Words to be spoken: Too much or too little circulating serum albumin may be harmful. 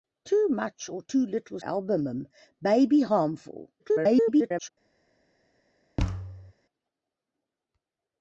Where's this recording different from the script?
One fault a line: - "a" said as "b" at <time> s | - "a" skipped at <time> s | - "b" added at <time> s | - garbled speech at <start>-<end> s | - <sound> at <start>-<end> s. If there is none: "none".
- "circulating serum" skipped at 1.6 s
- garbled speech at 3.8-4.7 s
- thud at 6.0-6.5 s